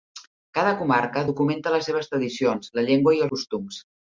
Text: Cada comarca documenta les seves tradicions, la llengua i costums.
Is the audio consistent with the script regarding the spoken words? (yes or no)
yes